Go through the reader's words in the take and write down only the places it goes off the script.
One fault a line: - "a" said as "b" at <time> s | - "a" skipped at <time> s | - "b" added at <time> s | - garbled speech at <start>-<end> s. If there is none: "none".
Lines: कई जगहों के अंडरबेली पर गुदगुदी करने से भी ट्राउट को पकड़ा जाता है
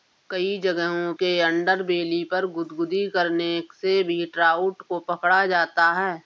none